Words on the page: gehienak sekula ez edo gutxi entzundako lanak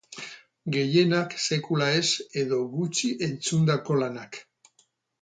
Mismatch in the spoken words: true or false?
false